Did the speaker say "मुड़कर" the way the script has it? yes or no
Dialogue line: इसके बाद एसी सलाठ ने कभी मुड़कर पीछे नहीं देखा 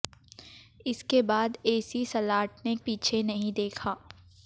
no